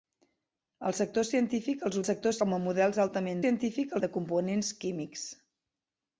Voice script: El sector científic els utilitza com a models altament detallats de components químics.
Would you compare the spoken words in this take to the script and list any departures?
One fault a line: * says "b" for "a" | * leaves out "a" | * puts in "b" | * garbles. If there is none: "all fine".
* says "sector" for "utilitza"
* says "científic" for "detallats"